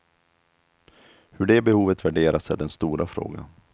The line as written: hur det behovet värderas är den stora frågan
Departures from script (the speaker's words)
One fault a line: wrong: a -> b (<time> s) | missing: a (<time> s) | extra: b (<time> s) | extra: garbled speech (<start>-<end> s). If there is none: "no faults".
no faults